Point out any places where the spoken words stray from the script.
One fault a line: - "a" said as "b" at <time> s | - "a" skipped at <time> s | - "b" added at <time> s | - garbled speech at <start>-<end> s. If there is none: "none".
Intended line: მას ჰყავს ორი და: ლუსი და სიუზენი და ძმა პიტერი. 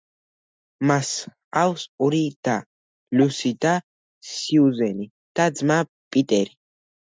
none